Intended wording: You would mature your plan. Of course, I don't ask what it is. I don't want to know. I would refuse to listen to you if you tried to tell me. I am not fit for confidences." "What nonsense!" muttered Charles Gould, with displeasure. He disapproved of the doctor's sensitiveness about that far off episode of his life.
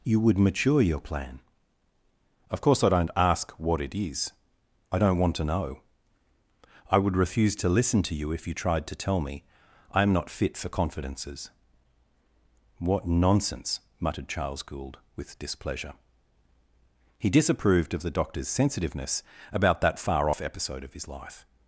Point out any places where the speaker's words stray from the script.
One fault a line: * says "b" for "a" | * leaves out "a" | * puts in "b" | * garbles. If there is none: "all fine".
all fine